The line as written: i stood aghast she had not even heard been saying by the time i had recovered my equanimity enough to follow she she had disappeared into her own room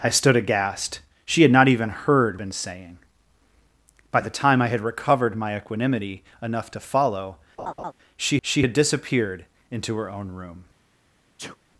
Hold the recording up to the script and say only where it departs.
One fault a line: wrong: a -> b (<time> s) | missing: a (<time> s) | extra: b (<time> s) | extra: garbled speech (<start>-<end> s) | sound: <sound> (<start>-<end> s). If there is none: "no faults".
sound: laugh (7.6-7.9 s)
sound: sneeze (11.4-11.6 s)